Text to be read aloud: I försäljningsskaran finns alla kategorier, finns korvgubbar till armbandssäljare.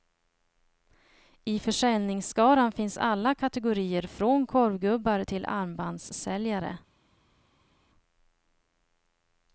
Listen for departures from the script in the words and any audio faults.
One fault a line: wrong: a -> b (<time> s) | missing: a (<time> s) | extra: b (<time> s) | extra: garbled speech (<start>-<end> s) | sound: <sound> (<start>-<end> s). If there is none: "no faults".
wrong: finns -> från (4.0 s)